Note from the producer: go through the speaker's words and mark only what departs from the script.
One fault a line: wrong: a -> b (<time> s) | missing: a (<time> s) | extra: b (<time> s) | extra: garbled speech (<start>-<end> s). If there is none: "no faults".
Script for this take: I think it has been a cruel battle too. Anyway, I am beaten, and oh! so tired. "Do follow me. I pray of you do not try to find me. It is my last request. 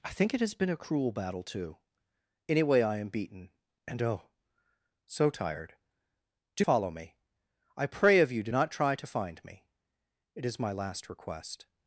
no faults